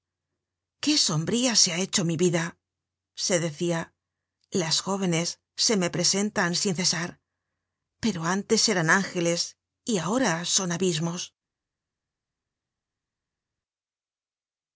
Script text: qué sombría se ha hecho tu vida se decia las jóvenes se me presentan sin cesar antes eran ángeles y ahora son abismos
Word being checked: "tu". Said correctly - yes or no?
no